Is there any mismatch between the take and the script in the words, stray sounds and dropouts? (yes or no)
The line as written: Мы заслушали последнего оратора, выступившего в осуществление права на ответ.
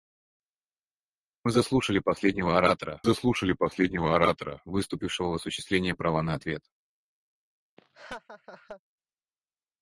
yes